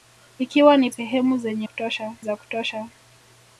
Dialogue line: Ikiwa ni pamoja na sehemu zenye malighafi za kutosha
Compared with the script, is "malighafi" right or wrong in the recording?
wrong